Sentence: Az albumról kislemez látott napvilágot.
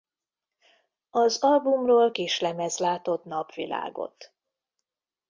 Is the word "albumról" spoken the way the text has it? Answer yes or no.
yes